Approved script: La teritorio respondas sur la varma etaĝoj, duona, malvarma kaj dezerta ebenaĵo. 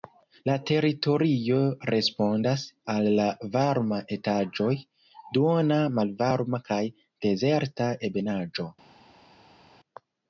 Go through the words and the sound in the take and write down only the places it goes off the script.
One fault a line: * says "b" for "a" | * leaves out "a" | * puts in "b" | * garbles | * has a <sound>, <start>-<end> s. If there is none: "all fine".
* says "al" for "sur"